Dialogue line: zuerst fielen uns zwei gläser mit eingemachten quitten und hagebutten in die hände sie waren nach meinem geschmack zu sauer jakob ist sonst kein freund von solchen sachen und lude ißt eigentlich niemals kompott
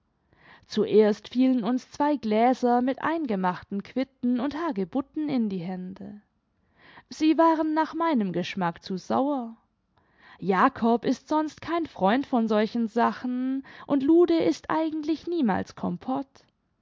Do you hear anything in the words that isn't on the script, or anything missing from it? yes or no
no